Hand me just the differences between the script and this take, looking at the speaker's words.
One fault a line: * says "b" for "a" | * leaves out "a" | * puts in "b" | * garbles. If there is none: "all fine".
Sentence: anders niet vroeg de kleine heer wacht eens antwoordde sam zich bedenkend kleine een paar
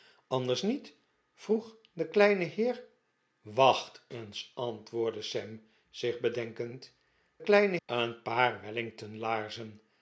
all fine